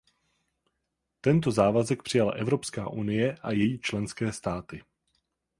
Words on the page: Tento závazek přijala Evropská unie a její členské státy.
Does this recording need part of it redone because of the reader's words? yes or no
no